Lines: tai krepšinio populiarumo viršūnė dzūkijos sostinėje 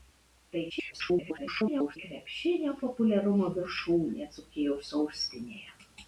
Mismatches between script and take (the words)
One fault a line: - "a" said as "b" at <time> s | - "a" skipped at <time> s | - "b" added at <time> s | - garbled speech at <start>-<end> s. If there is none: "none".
- garbled speech at 0.7-2.0 s